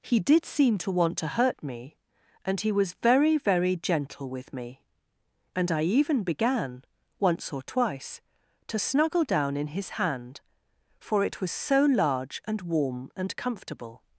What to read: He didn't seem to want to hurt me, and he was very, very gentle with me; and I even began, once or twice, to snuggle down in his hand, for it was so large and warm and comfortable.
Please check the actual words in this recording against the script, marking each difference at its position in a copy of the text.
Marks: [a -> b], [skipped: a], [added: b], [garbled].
He [didn't -> did] seem to want to hurt me, and he was very, very gentle with me; and I even began, once or twice, to snuggle down in his hand, for it was so large and warm and comfortable.